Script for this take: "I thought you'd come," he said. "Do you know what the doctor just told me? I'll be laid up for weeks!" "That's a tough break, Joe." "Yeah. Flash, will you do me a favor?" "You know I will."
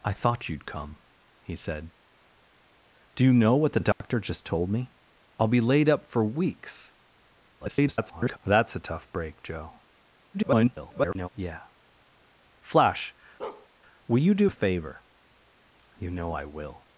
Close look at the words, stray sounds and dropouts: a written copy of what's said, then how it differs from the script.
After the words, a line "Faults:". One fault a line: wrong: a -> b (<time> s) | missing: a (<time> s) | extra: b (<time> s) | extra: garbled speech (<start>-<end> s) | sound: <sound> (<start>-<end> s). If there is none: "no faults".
"I thought you'd come," he said. "Do you know what the doctor just told me? I'll be laid up for weeks!" [garbled] "That's a tough break, Joe." [garbled] "Yeah. Flash, will you do a favor?" "You know I will."
Faults:
sound: dropout (3.9-4.0 s)
extra: garbled speech (7.6-8.4 s)
extra: garbled speech (10.3-11.3 s)
sound: bark (13.4-13.7 s)
missing: me (14.5 s)